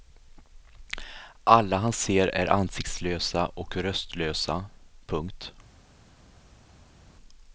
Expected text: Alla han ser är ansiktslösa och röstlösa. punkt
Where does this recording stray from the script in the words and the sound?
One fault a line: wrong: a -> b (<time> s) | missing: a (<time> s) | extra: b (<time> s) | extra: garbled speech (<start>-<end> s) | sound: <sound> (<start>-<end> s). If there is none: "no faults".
no faults